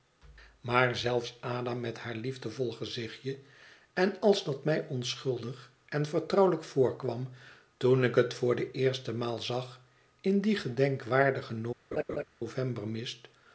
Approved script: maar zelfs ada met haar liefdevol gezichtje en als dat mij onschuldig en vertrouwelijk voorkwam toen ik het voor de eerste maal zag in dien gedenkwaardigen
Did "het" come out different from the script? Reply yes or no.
no